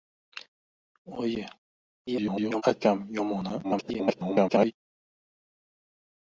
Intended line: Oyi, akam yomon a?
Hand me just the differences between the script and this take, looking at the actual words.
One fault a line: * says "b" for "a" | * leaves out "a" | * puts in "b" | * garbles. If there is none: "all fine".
* garbles
* garbles